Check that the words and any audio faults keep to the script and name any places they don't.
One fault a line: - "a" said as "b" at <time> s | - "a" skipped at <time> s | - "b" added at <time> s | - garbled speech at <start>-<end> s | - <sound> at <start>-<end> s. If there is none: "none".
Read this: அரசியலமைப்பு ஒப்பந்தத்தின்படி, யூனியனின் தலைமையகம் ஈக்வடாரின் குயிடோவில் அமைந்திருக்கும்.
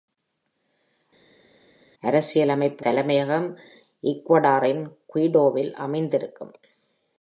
- "ஒப்பந்தத்தின்படி யூனியனின்" skipped at 2.8 s